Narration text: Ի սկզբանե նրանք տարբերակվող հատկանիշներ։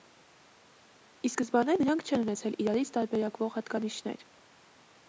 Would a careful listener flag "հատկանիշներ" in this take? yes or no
no